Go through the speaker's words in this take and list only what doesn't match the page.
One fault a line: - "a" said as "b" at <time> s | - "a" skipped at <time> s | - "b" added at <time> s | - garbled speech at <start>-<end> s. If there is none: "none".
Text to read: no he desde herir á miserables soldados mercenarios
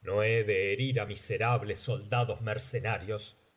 - "desde" said as "de" at 0.4 s